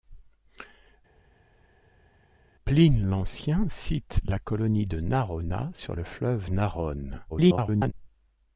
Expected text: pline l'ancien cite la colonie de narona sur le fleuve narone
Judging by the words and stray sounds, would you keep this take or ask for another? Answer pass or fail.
fail